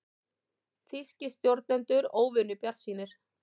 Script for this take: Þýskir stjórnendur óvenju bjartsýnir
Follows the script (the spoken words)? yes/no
yes